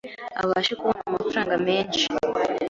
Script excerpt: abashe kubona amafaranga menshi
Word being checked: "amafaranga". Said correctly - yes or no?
yes